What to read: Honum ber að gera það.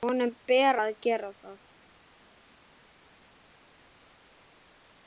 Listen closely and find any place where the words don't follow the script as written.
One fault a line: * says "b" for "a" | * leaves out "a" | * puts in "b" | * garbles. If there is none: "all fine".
all fine